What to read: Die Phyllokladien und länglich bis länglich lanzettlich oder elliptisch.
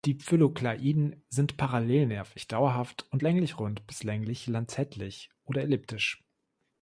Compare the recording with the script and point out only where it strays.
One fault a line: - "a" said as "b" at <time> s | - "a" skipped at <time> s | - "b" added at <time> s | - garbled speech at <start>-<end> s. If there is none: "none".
- "sind parallelnervig dauerhaft" added at 1.3 s
- "rund" added at 3.6 s